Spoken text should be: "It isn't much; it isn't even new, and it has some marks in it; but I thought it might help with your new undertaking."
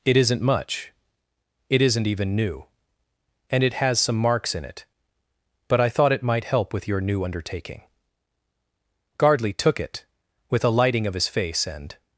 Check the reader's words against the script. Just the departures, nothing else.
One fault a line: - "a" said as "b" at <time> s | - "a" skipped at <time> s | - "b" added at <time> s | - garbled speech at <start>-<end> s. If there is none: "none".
- "Gardley took it with a lighting of his face and" added at 9.2 s